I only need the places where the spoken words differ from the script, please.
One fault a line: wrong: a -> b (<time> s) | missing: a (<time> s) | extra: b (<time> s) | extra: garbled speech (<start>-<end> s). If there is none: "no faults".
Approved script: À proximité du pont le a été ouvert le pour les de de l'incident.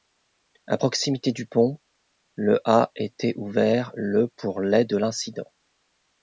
missing: de (4.9 s)